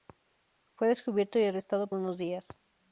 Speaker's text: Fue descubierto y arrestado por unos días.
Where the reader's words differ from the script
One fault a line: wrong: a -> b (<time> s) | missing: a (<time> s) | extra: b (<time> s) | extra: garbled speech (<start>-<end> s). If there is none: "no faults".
missing: por (1.9 s)